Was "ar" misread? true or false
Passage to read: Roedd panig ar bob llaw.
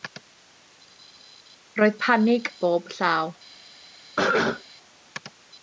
true